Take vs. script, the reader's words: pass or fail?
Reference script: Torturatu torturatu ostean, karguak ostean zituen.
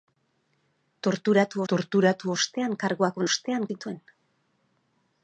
pass